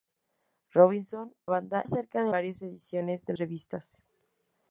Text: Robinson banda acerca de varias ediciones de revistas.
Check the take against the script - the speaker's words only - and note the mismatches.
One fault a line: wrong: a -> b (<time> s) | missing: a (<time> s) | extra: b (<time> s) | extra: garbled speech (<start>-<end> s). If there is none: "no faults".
no faults